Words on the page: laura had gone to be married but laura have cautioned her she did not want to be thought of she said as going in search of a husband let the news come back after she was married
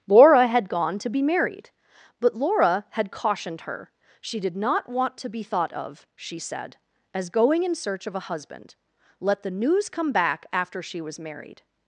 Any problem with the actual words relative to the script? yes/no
yes